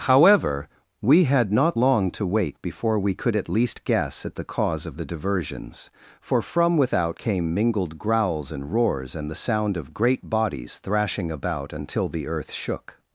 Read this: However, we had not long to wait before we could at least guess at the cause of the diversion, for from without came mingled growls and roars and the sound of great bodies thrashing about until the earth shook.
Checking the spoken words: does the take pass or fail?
fail